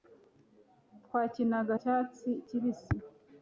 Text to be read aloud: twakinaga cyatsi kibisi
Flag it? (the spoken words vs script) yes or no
no